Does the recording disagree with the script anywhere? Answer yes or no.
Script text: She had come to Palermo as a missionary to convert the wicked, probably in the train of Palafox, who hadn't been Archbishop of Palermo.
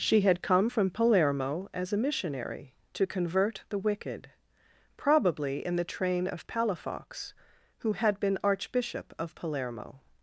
yes